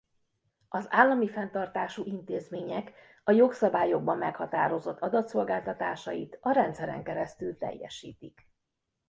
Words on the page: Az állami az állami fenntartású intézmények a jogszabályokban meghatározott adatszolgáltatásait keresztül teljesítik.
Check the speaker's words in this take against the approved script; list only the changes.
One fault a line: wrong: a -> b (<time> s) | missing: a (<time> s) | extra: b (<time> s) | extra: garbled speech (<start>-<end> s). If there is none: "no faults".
missing: az állami (1.3 s)
extra: a rendszeren (6.4 s)